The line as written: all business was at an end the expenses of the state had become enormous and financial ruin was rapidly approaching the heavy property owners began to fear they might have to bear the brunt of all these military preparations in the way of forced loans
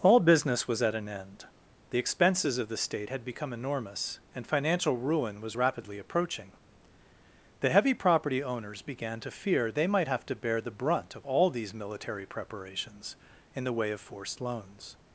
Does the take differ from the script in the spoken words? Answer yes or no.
no